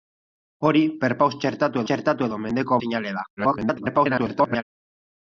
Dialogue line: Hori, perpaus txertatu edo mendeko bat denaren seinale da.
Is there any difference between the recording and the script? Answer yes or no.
yes